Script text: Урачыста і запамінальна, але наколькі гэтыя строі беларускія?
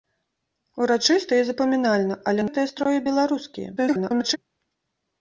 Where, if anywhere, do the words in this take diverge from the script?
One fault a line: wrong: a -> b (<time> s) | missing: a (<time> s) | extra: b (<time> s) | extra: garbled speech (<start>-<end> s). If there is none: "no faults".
missing: наколькі (2.4 s)
extra: garbled speech (3.8-4.4 s)